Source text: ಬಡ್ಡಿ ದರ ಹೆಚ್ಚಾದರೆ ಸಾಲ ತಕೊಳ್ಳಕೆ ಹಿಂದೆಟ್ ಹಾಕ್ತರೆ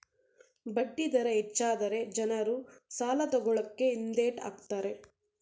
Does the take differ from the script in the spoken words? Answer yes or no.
yes